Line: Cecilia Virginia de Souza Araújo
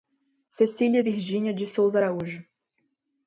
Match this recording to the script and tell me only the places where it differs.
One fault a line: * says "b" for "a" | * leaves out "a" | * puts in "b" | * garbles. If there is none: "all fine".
all fine